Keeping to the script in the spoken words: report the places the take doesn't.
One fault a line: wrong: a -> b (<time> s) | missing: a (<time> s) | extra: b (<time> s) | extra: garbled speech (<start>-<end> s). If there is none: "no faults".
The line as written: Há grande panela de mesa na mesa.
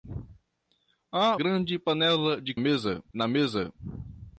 no faults